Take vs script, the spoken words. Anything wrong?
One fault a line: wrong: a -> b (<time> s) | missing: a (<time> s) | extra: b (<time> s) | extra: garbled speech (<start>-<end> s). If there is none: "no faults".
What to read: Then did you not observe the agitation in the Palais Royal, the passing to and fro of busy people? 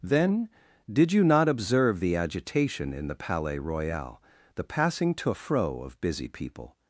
missing: and (5.3 s)